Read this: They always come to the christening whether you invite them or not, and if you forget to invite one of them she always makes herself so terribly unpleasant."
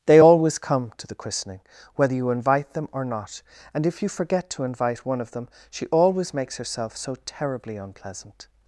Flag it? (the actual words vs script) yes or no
no